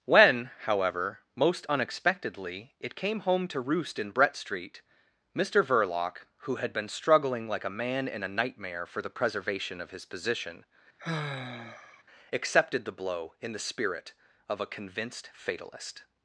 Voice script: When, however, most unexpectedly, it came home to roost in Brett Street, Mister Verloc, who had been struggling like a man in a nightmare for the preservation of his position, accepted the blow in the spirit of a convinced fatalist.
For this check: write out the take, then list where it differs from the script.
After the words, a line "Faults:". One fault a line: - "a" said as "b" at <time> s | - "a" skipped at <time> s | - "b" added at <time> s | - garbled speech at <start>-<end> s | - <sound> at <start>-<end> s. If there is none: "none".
When, however, most unexpectedly, it came home to roost in Brett Street, Mister Verloc, who had been struggling like a man in a nightmare for the preservation of his position, accepted the blow in the spirit of a convinced fatalist.
Faults:
- sigh at 11.0-12.0 s